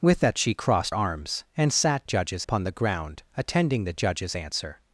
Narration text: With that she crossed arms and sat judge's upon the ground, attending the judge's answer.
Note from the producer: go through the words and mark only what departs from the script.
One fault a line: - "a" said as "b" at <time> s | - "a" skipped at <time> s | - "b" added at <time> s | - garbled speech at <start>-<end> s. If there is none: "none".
none